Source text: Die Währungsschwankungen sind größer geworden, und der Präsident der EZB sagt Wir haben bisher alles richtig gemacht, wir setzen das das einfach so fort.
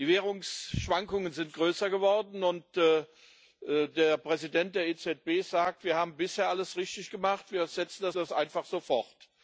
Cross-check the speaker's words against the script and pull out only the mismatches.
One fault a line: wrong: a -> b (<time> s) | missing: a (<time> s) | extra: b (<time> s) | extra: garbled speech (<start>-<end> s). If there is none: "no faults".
no faults